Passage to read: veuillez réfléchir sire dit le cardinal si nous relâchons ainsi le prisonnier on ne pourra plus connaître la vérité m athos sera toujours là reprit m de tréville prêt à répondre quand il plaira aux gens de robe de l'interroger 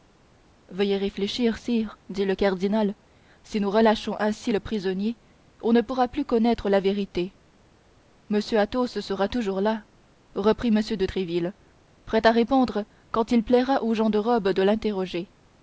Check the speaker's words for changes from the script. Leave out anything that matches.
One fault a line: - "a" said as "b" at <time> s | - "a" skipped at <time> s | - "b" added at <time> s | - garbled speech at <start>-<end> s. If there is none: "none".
none